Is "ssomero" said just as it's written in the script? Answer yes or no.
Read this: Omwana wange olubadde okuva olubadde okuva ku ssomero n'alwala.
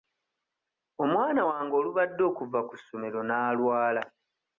yes